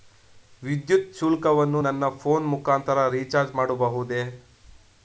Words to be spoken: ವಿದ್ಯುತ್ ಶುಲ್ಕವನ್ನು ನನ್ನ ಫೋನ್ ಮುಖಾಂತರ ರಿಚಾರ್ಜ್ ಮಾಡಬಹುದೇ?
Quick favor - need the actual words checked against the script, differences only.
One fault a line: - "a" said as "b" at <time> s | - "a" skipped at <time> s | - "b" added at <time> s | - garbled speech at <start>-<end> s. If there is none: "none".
none